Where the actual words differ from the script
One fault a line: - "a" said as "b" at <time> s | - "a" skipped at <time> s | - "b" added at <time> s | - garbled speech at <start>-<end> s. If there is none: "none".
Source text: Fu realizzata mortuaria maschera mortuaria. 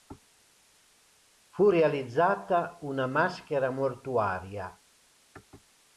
- "mortuaria" said as "una" at 2.8 s